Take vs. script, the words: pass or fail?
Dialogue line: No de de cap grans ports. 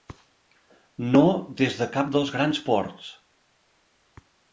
fail